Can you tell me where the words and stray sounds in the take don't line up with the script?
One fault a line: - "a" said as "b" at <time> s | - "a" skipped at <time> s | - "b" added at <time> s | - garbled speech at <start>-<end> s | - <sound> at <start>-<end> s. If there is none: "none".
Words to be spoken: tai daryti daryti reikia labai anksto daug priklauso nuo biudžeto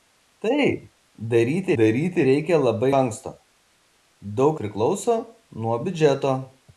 none